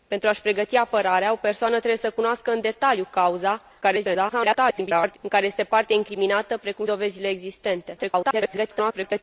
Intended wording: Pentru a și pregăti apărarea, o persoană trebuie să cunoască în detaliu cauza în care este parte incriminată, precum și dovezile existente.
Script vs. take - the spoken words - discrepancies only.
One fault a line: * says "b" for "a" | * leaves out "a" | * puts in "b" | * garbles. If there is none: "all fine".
* garbles
* leaves out "și"
* garbles